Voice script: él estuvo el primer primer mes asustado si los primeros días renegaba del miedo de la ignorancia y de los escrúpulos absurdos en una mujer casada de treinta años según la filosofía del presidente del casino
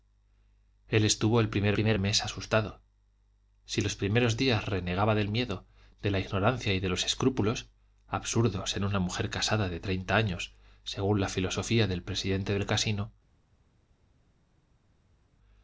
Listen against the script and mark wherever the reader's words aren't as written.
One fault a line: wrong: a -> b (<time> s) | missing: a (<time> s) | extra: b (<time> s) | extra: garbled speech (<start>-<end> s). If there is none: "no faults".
no faults